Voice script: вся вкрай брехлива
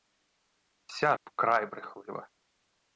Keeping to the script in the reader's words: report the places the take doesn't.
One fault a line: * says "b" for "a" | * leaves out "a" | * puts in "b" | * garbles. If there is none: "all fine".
all fine